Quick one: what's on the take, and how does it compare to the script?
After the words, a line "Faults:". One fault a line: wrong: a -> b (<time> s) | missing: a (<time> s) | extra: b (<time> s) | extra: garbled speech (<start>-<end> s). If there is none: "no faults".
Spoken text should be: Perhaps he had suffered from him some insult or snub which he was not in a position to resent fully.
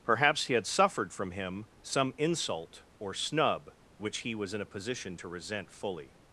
Perhaps he had suffered from him some insult or snub which he was in a position to resent fully.
Faults:
missing: not (4.5 s)